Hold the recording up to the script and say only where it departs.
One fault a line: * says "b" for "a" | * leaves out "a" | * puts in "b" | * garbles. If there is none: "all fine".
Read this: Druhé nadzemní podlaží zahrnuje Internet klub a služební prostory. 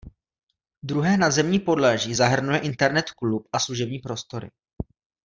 all fine